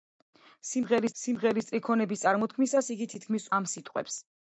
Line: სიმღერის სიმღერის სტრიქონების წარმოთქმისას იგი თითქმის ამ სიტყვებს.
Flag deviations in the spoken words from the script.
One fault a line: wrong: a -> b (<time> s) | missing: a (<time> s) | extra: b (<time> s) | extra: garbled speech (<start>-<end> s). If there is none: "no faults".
no faults